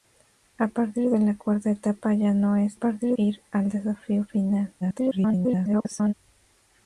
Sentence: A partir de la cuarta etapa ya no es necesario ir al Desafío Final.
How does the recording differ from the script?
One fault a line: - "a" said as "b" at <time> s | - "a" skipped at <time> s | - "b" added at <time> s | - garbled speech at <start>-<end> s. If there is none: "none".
- "necesario" said as "partir" at 2.7 s
- garbled speech at 4.8-6.1 s